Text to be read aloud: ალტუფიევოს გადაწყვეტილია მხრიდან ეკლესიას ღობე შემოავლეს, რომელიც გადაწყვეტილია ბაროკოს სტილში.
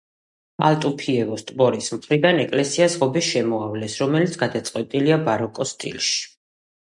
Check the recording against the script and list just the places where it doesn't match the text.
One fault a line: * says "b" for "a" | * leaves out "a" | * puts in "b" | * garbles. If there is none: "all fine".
* says "ტბორის" for "გადაწყვეტილია"